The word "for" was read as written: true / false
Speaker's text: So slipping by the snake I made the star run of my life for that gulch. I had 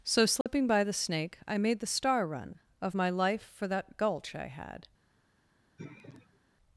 true